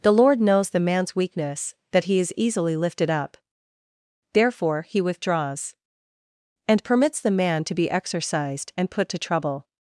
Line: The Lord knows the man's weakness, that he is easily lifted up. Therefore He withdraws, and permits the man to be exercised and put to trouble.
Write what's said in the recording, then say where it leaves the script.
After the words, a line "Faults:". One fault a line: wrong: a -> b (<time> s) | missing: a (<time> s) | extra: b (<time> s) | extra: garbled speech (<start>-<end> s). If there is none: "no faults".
The Lord knows the man's weakness, that he is easily lifted up. Therefore He withdraws, and permits the man to be exercised and put to trouble.
Faults:
no faults